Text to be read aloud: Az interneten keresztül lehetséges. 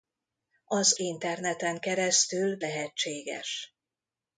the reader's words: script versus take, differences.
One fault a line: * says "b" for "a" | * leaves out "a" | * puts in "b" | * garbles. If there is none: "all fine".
all fine